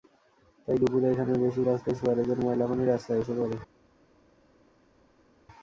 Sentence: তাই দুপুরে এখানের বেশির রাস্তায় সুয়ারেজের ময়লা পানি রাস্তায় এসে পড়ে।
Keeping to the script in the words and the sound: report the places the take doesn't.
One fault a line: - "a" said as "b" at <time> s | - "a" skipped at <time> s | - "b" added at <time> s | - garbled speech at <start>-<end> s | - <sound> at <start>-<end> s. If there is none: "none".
none